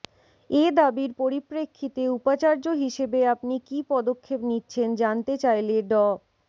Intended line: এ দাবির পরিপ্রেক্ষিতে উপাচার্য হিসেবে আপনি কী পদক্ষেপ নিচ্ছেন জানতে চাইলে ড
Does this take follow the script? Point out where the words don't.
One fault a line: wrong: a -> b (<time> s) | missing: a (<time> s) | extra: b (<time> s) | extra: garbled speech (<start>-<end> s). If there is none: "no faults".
no faults